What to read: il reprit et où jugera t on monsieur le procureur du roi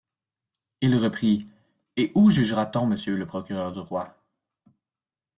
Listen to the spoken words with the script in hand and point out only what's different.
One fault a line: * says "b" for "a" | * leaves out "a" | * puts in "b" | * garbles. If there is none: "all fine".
all fine